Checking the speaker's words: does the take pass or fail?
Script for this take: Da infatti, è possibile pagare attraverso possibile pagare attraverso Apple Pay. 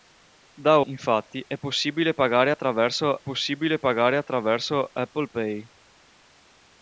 pass